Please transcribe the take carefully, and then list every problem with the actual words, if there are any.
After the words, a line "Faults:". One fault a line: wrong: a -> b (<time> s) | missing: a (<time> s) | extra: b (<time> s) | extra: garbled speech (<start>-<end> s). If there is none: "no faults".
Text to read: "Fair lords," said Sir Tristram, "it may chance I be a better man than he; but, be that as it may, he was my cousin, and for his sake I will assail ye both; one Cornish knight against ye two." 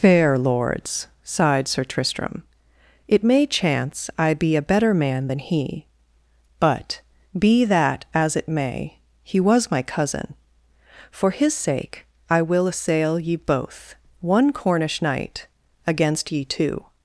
"Fair lords," sighed Sir Tristram, "it may chance I be a better man than he; but, be that as it may, he was my cousin, for his sake I will assail ye both; one Cornish knight against ye two."
Faults:
wrong: said -> sighed (1.2 s)
missing: and (10.4 s)